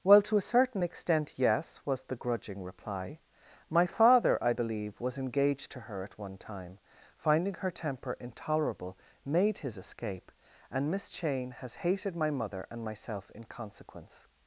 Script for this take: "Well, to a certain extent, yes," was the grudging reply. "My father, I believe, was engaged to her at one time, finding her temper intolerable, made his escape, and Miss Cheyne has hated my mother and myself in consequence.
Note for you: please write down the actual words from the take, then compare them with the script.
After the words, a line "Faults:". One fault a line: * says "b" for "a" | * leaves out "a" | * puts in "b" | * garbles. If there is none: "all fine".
"Well, to a certain extent, yes," was the grudging reply. "My father, I believe, was engaged to her at one time, finding her temper intolerable, made his escape, and Miss Cheyne has hated my mother and myself in consequence.
Faults:
all fine